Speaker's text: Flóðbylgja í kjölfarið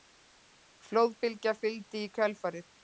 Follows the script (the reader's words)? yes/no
no